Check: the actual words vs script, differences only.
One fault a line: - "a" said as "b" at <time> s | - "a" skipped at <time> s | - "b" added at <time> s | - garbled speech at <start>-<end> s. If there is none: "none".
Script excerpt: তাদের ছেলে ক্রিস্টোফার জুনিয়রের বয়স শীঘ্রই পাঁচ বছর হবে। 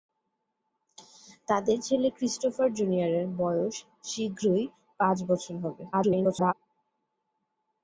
- garbled speech at 5.9-6.5 s